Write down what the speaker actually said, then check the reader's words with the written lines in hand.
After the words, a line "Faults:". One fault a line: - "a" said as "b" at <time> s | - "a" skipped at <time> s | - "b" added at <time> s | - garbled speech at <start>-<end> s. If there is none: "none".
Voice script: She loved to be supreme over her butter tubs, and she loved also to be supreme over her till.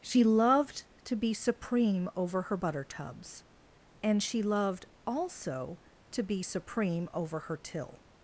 She loved to be supreme over her butter tubs, and she loved also to be supreme over her till.
Faults:
none